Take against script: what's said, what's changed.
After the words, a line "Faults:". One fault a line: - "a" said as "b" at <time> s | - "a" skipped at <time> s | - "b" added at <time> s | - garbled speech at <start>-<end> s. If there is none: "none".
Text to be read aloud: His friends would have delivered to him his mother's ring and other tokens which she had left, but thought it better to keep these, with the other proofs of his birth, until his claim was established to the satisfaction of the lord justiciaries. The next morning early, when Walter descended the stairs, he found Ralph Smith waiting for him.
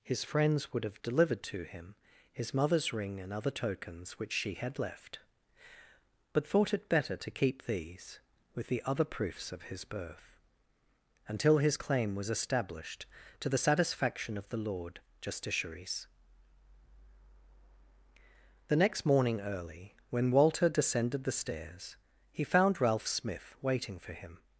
His friends would have delivered to him his mother's ring and other tokens which she had left, but thought it better to keep these, with the other proofs of his birth, until his claim was established to the satisfaction of the lord justiciaries. The next morning early, when Walter descended the stairs, he found Ralph Smith waiting for him.
Faults:
none